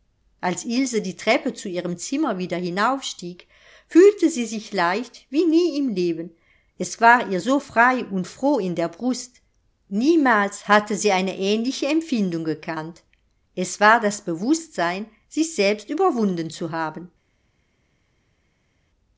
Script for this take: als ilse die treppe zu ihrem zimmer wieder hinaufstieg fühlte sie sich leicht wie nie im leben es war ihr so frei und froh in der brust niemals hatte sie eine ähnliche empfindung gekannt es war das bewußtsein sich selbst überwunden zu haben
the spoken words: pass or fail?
pass